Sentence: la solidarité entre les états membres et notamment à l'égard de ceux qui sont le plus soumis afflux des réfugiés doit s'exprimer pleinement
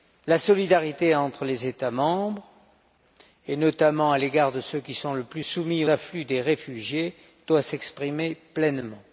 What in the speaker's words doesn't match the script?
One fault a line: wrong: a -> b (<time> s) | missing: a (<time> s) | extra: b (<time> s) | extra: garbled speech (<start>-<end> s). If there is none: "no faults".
no faults